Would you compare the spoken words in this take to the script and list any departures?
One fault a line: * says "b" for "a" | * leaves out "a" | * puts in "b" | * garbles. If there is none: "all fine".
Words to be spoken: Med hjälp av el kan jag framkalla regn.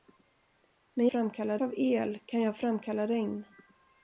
* says "framkalla" for "hjälp"